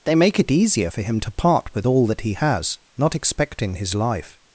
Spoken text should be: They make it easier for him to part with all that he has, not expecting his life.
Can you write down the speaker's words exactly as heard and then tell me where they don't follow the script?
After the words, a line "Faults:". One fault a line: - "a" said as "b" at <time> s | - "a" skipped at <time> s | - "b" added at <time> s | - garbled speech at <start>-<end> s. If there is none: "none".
They make it easier for him to part with all that he has, not expecting his life.
Faults:
none